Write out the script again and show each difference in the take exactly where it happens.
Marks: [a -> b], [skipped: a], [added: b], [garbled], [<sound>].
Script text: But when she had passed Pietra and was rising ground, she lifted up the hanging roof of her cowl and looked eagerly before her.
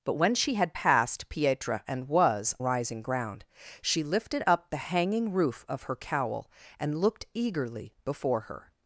But when she had passed Pietra and was rising ground, she lifted up the hanging roof of her cowl and looked eagerly before her.